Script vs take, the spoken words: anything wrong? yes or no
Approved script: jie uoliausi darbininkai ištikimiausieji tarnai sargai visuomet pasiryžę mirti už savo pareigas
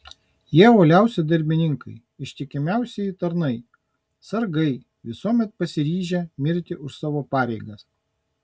no